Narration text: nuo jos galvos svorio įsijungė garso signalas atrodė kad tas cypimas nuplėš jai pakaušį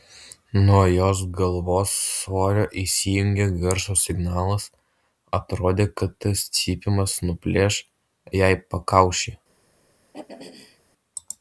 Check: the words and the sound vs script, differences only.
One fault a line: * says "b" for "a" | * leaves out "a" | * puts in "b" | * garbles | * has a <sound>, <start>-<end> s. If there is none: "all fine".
* has a throat clearing, 10.1-10.8 s